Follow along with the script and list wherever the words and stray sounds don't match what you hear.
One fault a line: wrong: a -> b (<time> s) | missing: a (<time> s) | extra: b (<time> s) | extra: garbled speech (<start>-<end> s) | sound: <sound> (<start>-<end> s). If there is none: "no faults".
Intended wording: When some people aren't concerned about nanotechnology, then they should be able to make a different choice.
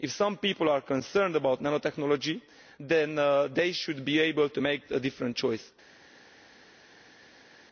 wrong: When -> If (0.0 s)
wrong: aren't -> are (0.7 s)